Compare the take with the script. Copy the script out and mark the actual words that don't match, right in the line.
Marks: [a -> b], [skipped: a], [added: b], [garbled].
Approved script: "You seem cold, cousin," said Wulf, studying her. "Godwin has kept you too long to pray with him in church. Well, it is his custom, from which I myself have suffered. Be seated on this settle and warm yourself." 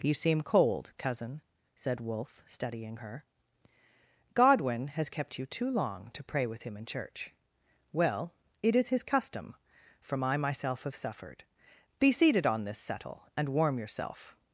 "You seem cold, cousin," said Wulf, studying her. "Godwin has kept you too long to pray with him in church. Well, it is his custom, from [skipped: which] I myself have suffered. Be seated on this settle and warm yourself."